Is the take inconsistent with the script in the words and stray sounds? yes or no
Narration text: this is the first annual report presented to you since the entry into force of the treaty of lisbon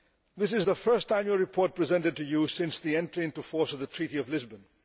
no